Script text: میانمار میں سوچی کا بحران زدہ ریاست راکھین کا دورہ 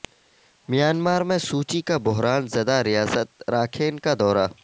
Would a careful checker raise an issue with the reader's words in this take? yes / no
no